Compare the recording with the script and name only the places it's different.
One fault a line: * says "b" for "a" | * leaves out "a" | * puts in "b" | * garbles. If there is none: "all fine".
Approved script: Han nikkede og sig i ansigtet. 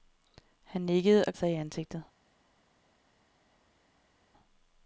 all fine